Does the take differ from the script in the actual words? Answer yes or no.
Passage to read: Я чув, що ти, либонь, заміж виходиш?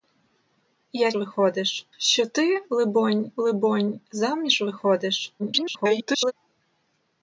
yes